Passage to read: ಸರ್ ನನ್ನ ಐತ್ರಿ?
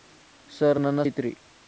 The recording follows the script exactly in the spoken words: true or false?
true